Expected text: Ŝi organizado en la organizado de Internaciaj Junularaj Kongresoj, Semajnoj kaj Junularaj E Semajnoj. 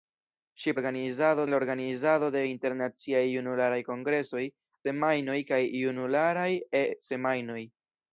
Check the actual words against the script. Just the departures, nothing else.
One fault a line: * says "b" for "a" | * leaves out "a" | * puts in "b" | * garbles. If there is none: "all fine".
all fine